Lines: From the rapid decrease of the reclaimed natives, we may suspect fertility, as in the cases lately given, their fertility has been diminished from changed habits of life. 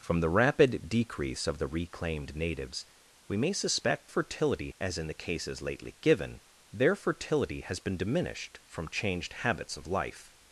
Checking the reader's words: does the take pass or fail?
pass